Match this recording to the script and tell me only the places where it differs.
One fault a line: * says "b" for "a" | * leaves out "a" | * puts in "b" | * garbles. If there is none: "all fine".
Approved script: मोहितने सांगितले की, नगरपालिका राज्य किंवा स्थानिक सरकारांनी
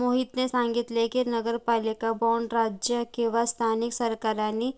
* puts in "बाँड"